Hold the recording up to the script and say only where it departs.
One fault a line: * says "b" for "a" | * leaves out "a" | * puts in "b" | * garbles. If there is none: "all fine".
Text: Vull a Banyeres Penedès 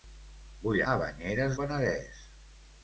all fine